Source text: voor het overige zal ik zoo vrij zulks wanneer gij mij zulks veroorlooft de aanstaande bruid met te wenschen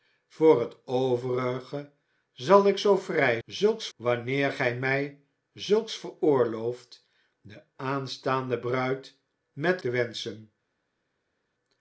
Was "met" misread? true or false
false